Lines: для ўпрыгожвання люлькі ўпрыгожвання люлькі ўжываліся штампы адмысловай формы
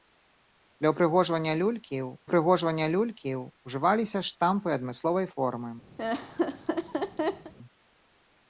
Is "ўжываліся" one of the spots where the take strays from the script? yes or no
no